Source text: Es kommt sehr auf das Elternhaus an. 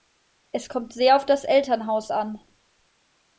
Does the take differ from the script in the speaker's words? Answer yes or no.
no